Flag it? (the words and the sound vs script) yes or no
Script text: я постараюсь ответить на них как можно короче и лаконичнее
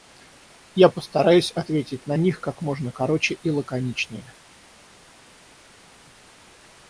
no